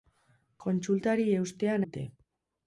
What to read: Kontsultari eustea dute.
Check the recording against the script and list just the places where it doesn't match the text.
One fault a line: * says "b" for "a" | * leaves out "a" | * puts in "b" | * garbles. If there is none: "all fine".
all fine